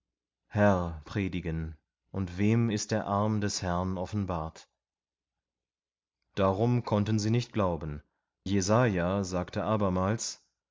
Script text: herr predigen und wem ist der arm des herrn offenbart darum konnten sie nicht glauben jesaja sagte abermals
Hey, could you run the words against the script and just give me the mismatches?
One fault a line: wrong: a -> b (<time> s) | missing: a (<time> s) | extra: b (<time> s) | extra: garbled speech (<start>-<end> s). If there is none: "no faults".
no faults